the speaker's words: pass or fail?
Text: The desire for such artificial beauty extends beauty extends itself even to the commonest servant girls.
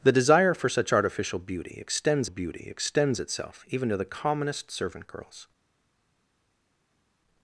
pass